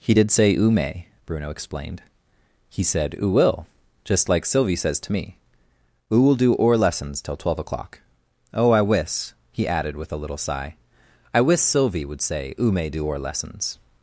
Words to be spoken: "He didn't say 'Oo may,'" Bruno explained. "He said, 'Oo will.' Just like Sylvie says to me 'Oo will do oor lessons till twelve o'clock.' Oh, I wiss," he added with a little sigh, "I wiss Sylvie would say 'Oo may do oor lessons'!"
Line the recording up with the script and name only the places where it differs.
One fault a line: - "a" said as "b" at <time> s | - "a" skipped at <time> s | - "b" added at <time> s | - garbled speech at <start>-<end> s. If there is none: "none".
- "didn't" said as "did" at 0.1 s